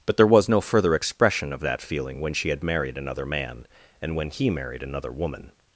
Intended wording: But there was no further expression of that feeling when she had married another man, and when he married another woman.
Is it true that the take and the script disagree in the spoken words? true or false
false